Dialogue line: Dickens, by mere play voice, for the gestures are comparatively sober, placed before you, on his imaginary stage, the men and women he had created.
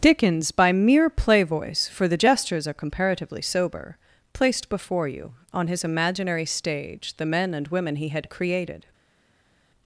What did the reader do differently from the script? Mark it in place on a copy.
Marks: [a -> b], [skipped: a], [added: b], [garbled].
Dickens, by mere play voice, for the gestures are comparatively sober, placed before you, on his imaginary stage, the men and women he had created.